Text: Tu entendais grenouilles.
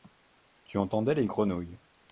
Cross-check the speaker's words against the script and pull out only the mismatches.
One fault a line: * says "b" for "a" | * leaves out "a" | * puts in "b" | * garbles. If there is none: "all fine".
* puts in "les"